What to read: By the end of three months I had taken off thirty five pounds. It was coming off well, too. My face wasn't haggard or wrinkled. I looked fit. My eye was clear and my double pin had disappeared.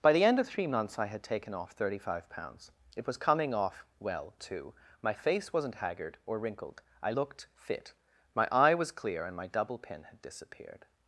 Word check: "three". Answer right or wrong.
right